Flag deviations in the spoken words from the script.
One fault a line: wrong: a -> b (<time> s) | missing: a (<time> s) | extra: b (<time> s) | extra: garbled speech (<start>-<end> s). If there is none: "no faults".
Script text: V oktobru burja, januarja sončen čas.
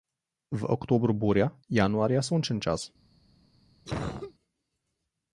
no faults